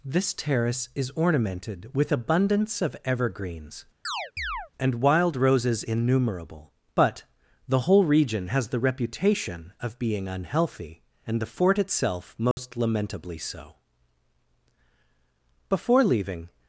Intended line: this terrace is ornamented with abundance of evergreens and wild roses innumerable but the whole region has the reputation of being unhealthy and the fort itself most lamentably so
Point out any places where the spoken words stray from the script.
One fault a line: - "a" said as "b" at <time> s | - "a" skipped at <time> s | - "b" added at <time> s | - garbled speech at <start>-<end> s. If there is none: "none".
- "before leaving" added at 15.7 s